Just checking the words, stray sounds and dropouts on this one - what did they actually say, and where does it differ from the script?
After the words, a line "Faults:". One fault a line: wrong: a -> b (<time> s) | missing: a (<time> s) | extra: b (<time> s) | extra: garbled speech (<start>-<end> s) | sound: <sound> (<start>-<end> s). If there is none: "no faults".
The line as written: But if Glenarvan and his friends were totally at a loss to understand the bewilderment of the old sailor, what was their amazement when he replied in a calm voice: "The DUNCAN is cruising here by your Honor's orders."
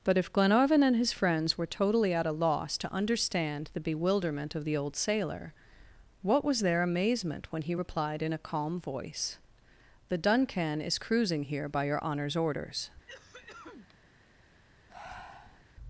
But if Glenarvan and his friends were totally at a loss to understand the bewilderment of the old sailor, what was their amazement when he replied in a calm voice: "The DUNCAN is cruising here by your Honor's orders."
Faults:
sound: cough (13.1-14.0 s)
sound: breath (14.9-15.6 s)